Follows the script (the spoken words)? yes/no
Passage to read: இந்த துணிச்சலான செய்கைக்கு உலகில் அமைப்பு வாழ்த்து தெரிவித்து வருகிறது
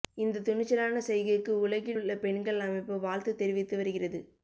no